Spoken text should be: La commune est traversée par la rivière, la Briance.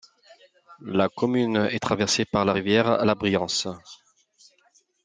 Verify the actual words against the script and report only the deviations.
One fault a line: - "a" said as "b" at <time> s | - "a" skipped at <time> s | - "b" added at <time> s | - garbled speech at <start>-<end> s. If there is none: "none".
none